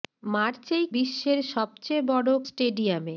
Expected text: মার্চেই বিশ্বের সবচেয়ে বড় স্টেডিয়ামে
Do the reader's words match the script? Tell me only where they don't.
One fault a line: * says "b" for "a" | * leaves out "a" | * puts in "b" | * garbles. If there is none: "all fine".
all fine